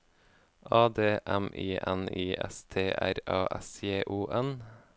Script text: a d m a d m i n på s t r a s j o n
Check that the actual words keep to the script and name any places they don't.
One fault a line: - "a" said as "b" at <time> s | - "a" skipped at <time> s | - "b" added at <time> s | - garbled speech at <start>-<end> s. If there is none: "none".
- "a d m" skipped at 1.5 s
- "på" said as "i" at 2.1 s